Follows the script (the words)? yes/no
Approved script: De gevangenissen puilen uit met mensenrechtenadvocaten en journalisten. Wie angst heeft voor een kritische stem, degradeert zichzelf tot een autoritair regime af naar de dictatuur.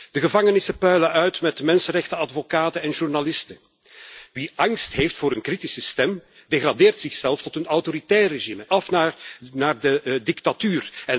yes